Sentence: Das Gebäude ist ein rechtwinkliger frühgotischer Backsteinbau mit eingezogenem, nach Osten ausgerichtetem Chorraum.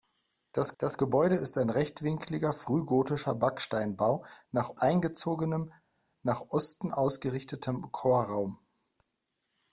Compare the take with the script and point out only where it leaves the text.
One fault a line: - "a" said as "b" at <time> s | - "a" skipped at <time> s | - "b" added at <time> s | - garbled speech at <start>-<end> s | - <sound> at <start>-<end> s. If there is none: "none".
- "das" added at 0.8 s
- "mit" said as "nach" at 4.5 s